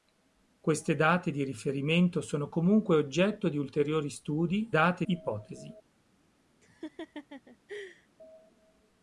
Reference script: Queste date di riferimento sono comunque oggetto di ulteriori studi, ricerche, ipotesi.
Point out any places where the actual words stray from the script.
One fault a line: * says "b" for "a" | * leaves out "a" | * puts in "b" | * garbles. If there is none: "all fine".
* says "date" for "ricerche"